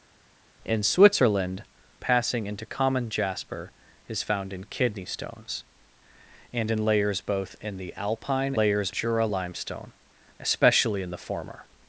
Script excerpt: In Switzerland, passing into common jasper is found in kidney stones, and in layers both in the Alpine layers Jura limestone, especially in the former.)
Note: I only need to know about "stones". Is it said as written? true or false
true